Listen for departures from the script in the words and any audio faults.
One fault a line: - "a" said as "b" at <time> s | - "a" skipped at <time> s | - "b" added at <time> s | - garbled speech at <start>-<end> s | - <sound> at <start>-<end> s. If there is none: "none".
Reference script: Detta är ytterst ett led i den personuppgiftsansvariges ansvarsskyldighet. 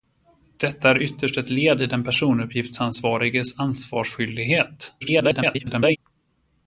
- garbled speech at 5.0-6.0 s